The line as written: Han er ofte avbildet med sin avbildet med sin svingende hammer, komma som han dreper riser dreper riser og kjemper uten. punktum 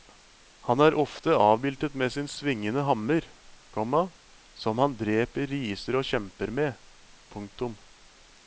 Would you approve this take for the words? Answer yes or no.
no